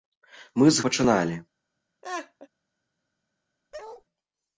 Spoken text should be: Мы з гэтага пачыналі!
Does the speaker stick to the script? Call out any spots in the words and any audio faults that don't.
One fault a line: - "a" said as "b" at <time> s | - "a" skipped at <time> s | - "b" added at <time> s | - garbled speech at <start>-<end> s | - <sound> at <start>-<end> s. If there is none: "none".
- "гэтага" skipped at 0.8 s
- laugh at 2.0-2.5 s
- bark at 3.7-4.0 s